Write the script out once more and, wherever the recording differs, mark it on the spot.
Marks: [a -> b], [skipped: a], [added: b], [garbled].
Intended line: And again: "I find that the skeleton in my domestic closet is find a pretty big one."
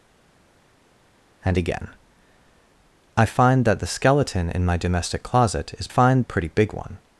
And again: "I find that the skeleton in my domestic closet is find a pretty big one."